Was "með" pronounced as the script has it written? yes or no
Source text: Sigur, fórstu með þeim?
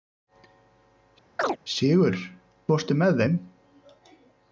yes